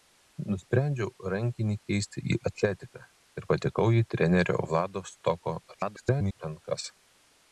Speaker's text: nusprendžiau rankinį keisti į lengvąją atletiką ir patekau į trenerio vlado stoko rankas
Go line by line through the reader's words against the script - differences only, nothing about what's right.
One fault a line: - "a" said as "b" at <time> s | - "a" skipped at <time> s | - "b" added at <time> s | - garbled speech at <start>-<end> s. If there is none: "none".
- "lengvąją" skipped at 2.4 s
- garbled speech at 5.7-6.4 s